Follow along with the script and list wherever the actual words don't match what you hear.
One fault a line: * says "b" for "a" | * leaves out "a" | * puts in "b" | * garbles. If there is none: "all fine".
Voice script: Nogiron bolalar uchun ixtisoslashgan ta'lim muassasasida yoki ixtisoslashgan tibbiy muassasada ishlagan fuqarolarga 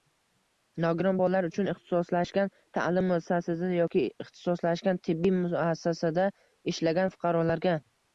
all fine